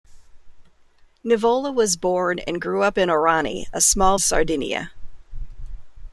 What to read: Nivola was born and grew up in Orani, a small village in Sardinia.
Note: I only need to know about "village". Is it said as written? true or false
false